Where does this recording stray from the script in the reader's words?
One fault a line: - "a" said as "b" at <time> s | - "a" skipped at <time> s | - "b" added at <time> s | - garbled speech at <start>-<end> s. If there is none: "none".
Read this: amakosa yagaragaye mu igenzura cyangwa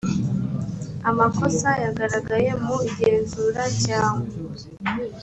none